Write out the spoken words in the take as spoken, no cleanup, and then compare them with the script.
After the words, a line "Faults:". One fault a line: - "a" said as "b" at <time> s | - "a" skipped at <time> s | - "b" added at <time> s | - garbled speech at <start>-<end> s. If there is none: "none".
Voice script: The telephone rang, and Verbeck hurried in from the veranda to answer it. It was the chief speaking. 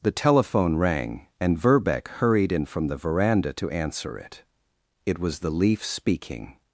The telephone rang, and Verbeck hurried in from the veranda to answer it. It was the leaf speaking.
Faults:
- "chief" said as "leaf" at 5.5 s